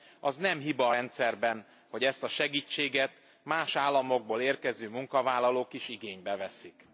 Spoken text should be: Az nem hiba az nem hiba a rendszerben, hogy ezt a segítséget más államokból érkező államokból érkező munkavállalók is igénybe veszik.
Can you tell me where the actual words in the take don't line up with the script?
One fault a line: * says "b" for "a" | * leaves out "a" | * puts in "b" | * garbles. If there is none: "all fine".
* leaves out "az nem hiba"
* leaves out "államokból érkező"